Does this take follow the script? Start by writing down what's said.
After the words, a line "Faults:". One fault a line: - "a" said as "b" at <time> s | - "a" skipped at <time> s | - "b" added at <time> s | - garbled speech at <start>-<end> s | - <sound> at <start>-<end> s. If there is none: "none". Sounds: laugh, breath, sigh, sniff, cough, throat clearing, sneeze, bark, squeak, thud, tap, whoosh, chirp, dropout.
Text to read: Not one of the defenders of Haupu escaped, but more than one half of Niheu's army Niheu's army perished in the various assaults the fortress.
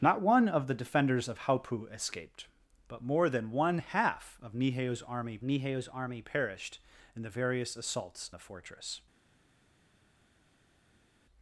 Not one of the defenders of Haupu escaped, but more than one half of Niheu's army Niheu's army perished in the various assaults the fortress.
Faults:
none